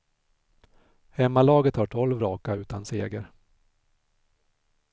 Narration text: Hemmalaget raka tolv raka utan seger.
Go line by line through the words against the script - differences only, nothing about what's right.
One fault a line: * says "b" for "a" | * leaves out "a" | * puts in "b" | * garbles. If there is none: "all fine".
* says "har" for "raka"